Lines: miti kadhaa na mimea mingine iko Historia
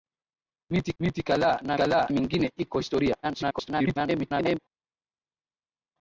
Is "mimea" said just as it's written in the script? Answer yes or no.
no